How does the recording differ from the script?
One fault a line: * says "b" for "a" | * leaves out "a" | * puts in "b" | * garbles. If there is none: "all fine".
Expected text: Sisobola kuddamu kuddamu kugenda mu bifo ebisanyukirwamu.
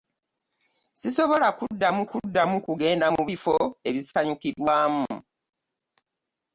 all fine